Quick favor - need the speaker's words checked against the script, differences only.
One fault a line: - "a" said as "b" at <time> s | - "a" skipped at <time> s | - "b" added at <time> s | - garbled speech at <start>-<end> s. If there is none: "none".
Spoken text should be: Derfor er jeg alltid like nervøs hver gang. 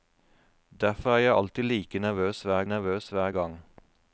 - "nervøs hver" added at 2.7 s